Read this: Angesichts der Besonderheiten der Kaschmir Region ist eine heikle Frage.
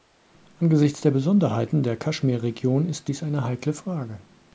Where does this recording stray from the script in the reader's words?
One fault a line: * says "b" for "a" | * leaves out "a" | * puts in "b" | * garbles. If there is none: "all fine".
* puts in "dies"